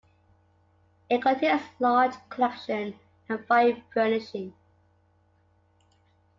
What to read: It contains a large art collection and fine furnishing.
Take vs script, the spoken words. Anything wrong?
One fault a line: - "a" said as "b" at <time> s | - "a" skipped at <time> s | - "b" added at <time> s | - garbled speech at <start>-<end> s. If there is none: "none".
- "art" skipped at 2.1 s